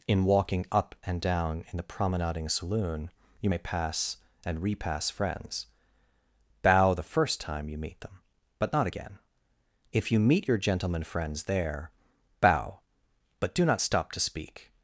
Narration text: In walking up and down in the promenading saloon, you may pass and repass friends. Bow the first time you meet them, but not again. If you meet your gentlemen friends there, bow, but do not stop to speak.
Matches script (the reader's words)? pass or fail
pass